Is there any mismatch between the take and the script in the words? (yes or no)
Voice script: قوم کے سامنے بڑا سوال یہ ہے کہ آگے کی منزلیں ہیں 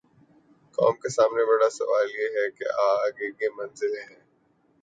no